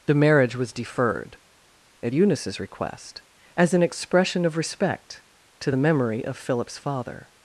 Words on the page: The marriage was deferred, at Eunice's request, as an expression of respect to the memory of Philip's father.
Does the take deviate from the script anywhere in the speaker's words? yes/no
no